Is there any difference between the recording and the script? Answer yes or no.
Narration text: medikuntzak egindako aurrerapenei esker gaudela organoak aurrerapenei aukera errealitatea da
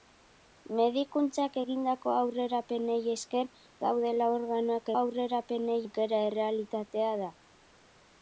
no